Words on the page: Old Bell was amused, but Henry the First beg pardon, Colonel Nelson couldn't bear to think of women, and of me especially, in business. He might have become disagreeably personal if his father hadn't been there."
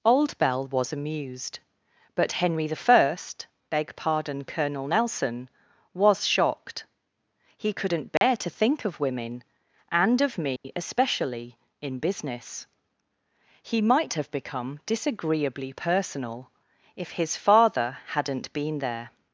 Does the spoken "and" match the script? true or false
true